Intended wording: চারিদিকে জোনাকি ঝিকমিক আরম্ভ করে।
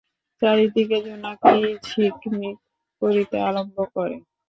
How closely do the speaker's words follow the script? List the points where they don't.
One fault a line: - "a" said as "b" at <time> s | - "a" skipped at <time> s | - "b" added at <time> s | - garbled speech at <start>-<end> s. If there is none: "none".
- "করিতে" added at 3.0 s